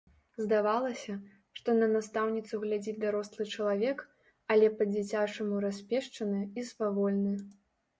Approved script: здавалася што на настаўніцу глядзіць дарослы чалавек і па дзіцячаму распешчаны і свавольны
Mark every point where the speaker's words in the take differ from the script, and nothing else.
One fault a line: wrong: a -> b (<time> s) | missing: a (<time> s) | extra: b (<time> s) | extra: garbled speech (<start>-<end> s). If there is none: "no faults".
wrong: і -> але (4.6 s)